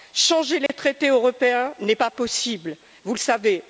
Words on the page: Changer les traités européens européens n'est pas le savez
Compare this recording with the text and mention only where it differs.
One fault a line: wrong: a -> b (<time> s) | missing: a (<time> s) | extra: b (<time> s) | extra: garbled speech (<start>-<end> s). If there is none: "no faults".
missing: européens (1.7 s)
extra: possible vous (2.1 s)